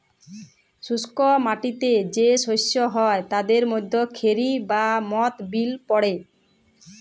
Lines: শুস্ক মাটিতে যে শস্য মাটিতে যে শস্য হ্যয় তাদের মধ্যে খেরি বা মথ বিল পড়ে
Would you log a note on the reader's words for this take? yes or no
yes